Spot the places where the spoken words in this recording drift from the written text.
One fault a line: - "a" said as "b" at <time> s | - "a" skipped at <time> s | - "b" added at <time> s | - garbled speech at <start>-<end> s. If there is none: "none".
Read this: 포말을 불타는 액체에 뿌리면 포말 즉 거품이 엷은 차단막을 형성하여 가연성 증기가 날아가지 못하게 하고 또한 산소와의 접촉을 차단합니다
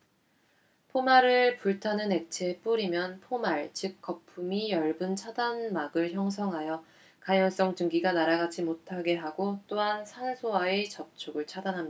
none